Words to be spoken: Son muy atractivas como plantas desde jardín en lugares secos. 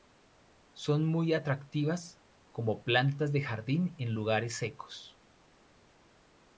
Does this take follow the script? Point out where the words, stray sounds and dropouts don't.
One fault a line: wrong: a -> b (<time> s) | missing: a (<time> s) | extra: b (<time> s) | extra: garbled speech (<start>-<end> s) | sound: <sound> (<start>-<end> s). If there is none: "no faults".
wrong: desde -> de (3.3 s)